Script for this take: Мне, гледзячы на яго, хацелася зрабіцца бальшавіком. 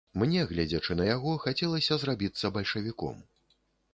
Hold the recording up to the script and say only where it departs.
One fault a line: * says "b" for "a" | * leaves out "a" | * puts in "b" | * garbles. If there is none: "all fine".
all fine